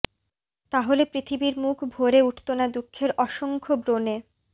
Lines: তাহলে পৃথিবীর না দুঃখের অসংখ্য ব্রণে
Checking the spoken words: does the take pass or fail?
fail